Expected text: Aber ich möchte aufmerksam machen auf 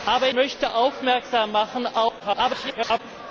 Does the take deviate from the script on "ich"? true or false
true